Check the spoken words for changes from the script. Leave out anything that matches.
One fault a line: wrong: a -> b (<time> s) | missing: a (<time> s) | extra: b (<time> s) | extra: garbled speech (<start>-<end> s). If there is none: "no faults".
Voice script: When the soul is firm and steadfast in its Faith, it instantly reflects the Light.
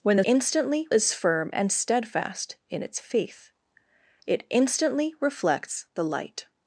wrong: soul -> instantly (0.2 s)